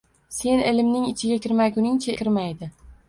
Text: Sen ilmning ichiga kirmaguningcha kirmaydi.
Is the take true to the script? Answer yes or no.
yes